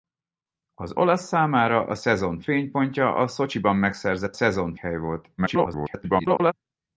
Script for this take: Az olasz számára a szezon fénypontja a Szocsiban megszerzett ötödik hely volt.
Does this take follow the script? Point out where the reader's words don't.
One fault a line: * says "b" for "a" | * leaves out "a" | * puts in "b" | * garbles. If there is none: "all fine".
* says "szezon" for "ötödik"
* garbles